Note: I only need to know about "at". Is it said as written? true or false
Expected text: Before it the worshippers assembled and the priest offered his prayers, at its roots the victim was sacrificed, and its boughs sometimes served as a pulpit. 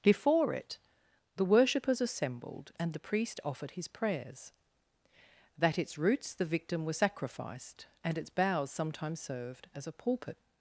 false